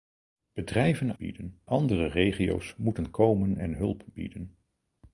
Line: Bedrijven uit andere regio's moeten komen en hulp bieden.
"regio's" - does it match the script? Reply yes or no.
yes